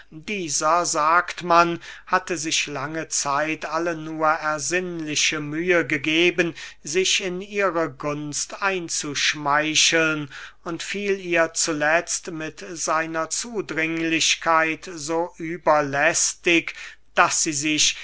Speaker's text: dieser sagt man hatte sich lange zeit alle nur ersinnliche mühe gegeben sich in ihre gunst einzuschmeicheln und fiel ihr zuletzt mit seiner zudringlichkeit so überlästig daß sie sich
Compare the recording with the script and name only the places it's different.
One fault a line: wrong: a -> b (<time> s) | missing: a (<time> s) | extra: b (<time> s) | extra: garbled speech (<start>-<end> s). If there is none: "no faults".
no faults